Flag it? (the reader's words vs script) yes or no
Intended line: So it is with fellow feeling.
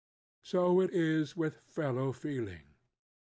no